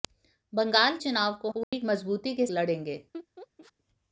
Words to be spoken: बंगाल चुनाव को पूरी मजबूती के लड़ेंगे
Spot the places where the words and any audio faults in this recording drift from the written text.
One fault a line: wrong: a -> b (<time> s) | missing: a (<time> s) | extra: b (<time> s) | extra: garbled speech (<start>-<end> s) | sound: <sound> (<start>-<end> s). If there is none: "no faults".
sound: dropout (1.6-1.7 s)
sound: laugh (3.1-3.7 s)